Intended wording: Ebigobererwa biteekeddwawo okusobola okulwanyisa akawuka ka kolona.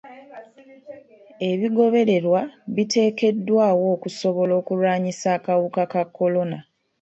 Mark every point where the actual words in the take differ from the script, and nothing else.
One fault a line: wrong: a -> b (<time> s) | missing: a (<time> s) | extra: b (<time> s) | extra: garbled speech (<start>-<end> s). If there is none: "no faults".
no faults